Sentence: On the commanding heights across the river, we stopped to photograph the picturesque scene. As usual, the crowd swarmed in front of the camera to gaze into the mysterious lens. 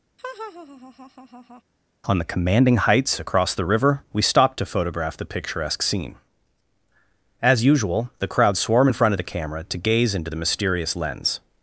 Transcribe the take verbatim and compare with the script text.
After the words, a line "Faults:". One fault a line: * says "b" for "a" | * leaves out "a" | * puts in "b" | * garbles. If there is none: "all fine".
On the commanding heights across the river, we stopped to photograph the picturesque scene. As usual, the crowd swarm in front of the camera to gaze into the mysterious lens.
Faults:
* says "swarm" for "swarmed"